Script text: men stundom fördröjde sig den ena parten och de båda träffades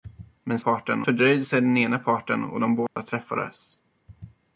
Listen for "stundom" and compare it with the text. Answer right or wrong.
wrong